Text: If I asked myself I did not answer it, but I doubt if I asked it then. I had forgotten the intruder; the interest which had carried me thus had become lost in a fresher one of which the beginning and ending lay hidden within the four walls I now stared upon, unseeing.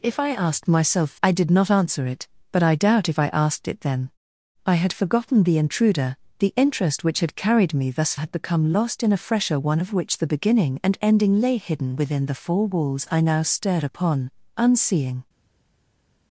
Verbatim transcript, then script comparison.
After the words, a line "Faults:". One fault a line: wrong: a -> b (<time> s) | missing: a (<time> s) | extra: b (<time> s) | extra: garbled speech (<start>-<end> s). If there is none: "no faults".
If I asked myself I did not answer it, but I doubt if I asked it then. I had forgotten the intruder; the interest which had carried me thus had become lost in a fresher one of which the beginning and ending lay hidden within the four walls I now stared upon, unseeing.
Faults:
no faults